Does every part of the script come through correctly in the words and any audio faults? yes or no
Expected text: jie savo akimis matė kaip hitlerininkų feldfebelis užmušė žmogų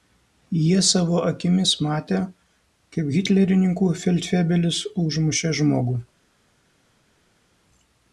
yes